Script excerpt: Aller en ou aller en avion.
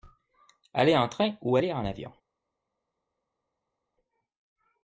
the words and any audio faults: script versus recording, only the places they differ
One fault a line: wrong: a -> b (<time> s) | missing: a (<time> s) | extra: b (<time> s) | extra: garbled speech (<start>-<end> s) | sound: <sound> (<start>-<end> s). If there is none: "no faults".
extra: train (1.1 s)